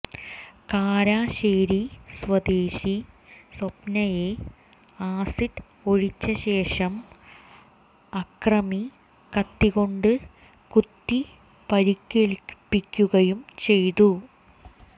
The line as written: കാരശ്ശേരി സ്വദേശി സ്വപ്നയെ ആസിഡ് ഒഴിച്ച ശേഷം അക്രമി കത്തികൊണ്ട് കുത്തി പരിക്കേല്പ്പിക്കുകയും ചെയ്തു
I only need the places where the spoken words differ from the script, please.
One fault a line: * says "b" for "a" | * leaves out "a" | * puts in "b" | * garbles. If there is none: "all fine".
all fine